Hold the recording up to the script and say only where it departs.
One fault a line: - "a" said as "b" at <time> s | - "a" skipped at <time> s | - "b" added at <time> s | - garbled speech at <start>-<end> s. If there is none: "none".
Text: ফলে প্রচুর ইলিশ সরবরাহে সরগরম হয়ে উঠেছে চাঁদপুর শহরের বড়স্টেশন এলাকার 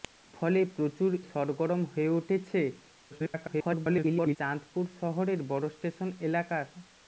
- "ইলিশ সরবরাহে" skipped at 1.1 s
- garbled speech at 3.1-4.4 s